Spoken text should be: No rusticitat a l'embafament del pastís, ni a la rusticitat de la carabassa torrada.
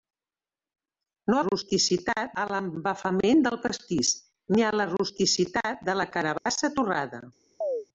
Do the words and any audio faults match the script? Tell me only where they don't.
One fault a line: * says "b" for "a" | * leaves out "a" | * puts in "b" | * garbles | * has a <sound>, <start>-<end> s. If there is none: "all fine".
* has a dropout, 6.4-6.5 s
* has a chirp, 7.6-7.9 s